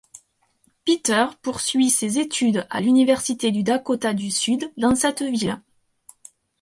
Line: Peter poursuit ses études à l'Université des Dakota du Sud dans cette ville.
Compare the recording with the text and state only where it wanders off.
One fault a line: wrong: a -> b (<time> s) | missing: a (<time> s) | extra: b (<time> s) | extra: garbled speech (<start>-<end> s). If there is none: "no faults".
wrong: des -> du (3.5 s)